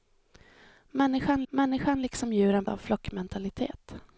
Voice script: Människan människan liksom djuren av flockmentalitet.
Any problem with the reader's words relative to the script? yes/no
no